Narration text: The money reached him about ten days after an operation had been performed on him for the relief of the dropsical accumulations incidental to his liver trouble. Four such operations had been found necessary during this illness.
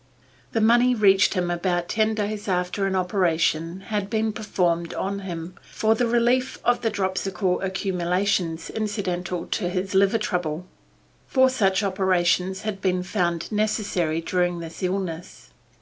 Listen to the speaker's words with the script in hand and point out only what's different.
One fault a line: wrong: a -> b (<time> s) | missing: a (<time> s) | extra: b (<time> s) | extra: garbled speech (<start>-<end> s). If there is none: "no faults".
no faults